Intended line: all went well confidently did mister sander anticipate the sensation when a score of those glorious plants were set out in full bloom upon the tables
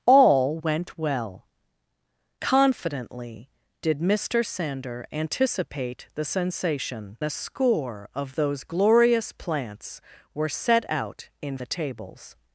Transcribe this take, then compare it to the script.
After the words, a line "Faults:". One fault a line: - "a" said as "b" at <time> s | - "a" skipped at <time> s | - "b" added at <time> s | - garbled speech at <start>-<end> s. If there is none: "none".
all went well confidently did mister sander anticipate the sensation a score of those glorious plants were set out in the tables
Faults:
- "when" skipped at 7.2 s
- "full bloom upon" skipped at 11.6 s